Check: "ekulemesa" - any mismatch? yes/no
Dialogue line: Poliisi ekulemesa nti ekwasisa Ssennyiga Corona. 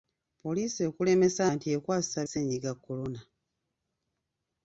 no